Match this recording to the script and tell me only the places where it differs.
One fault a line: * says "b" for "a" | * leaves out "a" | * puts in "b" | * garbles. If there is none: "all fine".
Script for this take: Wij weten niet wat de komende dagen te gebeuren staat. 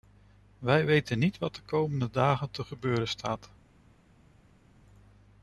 all fine